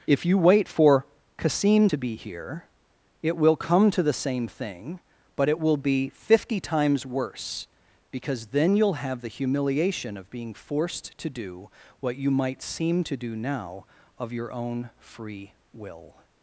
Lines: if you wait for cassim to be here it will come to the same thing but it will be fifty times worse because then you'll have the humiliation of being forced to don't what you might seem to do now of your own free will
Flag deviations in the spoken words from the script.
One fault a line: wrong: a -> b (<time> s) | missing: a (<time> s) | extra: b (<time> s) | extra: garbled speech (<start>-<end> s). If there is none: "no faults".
wrong: don't -> do (11.3 s)